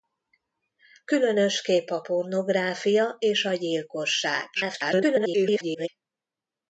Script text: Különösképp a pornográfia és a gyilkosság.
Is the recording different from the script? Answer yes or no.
yes